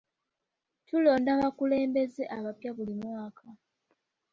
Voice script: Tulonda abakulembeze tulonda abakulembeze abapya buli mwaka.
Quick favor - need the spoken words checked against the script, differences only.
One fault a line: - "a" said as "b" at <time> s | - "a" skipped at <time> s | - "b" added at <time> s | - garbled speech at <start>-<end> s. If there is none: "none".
- "tulonda abakulembeze" skipped at 2.2 s